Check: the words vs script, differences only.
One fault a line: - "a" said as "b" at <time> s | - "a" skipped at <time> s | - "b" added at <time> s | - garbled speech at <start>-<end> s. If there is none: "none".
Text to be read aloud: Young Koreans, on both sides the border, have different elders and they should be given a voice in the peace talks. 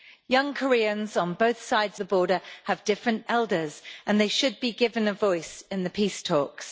none